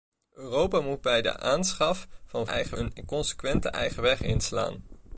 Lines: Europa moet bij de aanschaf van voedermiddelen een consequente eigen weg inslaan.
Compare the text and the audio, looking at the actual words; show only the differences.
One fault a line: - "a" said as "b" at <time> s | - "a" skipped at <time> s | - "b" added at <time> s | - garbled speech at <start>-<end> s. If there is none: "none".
- "voedermiddelen" said as "eigen" at 2.4 s